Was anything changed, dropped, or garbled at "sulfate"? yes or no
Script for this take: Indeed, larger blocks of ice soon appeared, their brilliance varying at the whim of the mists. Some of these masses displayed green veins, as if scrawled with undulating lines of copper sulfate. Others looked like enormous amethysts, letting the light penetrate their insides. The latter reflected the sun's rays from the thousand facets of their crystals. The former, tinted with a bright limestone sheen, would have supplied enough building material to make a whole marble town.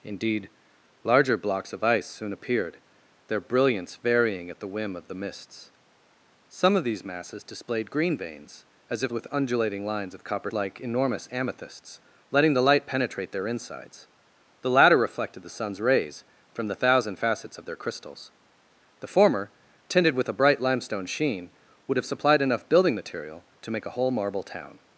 yes